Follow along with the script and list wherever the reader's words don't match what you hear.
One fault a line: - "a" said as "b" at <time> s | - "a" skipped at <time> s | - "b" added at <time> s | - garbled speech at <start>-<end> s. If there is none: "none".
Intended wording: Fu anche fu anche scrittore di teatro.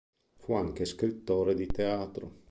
- "fu anche" skipped at 0.8 s